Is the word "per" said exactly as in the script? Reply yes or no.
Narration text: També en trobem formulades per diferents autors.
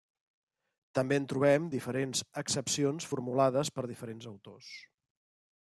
yes